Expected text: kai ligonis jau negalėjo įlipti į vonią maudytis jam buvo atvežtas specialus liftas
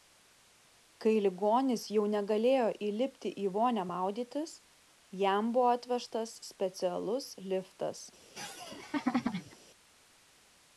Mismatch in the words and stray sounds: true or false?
true